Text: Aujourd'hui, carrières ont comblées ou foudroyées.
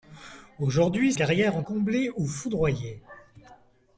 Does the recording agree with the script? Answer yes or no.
yes